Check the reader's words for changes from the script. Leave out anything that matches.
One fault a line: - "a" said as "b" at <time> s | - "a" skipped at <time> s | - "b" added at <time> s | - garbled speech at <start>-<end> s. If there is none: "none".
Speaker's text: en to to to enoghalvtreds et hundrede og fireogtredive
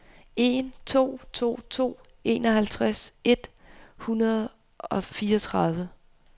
none